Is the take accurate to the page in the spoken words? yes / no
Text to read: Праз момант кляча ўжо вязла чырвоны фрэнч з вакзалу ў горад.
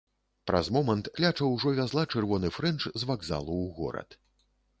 yes